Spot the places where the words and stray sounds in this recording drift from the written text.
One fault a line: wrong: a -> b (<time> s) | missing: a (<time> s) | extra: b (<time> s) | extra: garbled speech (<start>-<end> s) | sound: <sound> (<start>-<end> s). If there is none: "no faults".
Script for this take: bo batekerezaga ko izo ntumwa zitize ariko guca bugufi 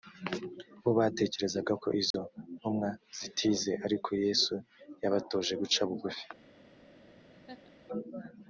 sound: dropout (2.1-2.1 s)
extra: yesu yabatoje (4.2 s)
sound: laugh (7.3-7.7 s)